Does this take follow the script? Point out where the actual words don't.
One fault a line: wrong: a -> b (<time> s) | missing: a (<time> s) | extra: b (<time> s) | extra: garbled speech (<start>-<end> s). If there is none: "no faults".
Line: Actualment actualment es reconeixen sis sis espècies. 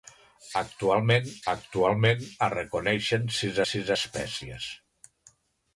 no faults